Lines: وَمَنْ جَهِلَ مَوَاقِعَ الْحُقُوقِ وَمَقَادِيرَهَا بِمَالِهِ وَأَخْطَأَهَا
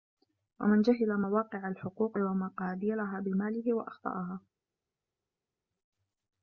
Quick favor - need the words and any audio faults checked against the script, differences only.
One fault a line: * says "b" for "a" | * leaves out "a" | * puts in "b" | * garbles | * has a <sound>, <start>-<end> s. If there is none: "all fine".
all fine